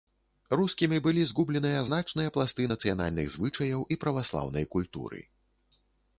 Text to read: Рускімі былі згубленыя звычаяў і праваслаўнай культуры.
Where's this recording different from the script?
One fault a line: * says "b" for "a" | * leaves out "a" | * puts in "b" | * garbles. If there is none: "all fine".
* puts in "значныя пласты нацыянальных"